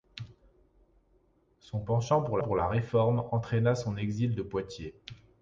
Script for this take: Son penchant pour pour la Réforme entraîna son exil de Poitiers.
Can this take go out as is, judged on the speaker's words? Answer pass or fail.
pass